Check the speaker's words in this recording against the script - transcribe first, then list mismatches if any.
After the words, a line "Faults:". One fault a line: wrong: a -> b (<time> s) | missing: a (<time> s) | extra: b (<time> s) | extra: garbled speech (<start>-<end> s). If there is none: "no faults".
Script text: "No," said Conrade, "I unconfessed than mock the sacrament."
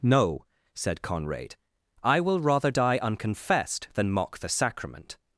"No," said Conrade, "I will rather die unconfessed than mock the sacrament."
Faults:
extra: will rather die (2.2 s)